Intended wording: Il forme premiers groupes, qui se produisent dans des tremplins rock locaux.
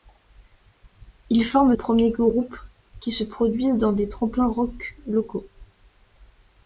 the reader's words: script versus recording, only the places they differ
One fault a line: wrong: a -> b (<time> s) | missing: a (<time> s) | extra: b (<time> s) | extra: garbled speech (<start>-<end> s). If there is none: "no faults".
no faults